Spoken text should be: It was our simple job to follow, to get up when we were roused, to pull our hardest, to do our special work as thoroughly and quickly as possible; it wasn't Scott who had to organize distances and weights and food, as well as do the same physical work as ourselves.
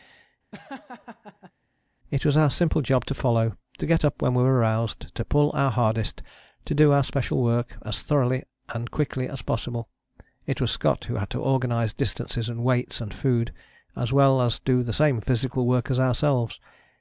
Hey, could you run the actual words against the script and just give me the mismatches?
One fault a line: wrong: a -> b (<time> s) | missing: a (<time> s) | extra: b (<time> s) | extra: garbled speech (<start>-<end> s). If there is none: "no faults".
wrong: wasn't -> was (10.6 s)